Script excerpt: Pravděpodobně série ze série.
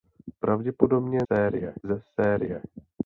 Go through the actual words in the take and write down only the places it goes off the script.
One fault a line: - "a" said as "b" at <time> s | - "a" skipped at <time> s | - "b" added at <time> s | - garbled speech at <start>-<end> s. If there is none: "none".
none